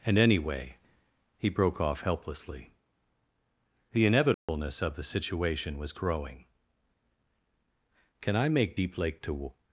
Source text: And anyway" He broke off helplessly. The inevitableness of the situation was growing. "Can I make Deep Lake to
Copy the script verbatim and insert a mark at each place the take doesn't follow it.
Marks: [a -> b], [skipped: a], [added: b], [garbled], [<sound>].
And anyway" He broke off helplessly. The inevitableness [dropout] of the situation was growing. "Can I make Deep Lake to